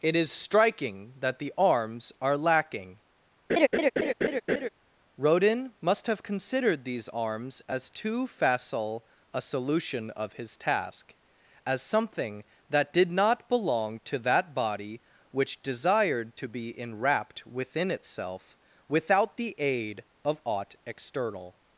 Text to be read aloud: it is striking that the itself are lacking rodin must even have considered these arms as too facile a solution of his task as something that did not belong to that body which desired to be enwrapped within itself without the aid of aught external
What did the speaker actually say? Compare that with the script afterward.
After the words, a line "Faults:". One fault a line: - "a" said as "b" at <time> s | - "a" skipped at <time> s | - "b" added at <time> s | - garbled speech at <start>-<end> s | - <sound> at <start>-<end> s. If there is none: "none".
it is striking that the arms are lacking rodin must have considered these arms as too facile a solution of his task as something that did not belong to that body which desired to be enwrapped within itself without the aid of aught external
Faults:
- "itself" said as "arms" at 1.6 s
- laugh at 3.5-4.7 s
- "even" skipped at 6.1 s